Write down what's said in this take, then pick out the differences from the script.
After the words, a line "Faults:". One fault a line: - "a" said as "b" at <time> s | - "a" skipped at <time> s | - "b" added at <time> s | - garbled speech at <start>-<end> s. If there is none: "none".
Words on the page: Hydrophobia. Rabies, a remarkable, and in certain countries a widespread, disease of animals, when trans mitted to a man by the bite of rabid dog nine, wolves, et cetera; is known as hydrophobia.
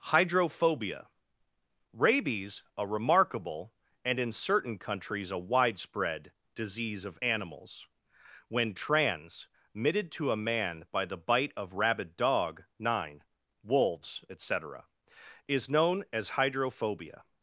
Hydrophobia. Rabies, a remarkable, and in certain countries a widespread, disease of animals, when trans mitted to a man by the bite of rabid dog nine, wolves, et cetera; is known as hydrophobia.
Faults:
none